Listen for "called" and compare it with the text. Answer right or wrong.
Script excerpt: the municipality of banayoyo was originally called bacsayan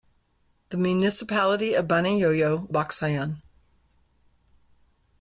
wrong